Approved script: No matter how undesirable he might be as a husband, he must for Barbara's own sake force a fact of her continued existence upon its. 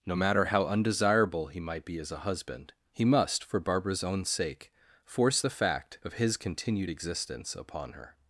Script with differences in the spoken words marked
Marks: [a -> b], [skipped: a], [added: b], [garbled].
No matter how undesirable he might be as a husband, he must for Barbara's own sake force [a -> the] fact of [her -> his] continued existence upon [its. -> her]